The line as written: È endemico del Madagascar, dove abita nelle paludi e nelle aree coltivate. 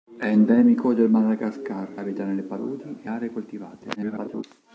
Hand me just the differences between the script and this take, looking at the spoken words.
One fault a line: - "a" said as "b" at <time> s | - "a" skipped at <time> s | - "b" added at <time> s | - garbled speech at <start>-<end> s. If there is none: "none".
- "dove" skipped at 1.9 s
- "nelle" skipped at 3.1 s
- garbled speech at 4.0-4.4 s